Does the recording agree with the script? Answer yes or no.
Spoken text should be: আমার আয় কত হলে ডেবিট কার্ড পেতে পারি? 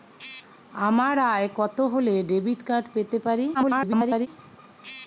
no